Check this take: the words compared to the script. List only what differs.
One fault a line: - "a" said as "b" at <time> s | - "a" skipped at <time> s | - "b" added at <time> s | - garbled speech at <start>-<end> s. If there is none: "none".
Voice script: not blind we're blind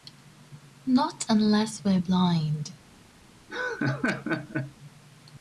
- "blind" said as "unless" at 1.3 s